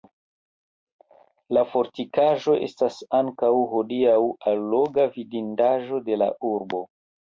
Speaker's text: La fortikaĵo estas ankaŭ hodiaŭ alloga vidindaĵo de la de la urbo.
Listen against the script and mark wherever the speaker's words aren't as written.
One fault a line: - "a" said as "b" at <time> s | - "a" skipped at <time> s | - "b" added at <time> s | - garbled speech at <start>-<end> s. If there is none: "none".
- "de la" skipped at 6.4 s